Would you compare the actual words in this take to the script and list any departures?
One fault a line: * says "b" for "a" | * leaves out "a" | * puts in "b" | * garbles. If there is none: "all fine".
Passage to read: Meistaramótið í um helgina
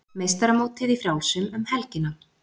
* puts in "frjálsum"